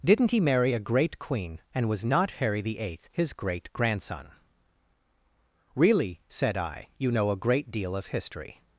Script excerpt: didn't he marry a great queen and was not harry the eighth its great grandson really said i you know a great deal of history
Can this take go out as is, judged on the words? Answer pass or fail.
fail